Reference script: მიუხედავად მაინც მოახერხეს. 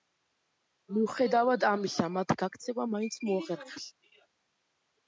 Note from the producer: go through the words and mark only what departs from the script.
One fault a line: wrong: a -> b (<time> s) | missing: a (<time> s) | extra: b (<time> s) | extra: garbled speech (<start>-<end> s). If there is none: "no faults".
extra: ამისა მათ გაქცევა (1.7 s)